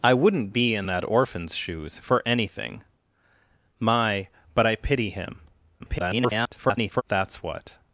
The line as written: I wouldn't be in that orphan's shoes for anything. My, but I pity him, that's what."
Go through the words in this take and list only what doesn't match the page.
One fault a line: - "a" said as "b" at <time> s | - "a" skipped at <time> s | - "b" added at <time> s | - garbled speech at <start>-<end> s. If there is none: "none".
- garbled speech at 5.8-7.0 s